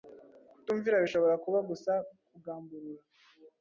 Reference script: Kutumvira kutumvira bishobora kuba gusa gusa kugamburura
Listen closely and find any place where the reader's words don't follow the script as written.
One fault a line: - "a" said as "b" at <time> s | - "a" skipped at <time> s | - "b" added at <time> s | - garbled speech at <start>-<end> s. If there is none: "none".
- "kutumvira" skipped at 1.0 s
- "gusa" skipped at 1.9 s